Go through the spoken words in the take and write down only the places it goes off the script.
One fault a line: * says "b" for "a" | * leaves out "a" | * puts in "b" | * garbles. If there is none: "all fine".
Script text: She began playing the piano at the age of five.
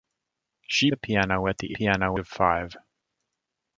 * leaves out "began playing"
* says "piano" for "age"